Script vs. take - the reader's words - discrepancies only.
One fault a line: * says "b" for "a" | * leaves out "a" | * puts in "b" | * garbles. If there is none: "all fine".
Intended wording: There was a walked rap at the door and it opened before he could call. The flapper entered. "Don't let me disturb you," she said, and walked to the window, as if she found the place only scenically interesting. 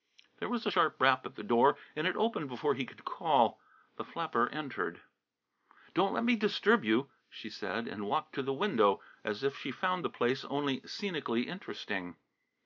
* says "sharp" for "walked"